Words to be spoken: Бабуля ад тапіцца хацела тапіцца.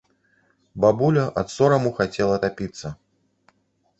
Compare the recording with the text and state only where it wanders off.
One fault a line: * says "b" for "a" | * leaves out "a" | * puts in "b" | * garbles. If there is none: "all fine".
* says "сораму" for "тапіцца"